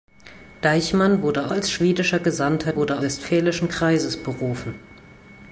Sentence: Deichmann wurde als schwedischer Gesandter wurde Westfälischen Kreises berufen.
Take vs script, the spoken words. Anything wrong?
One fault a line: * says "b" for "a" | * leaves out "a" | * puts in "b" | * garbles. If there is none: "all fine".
all fine